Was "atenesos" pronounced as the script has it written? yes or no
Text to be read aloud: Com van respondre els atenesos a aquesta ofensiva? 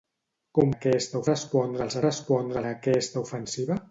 no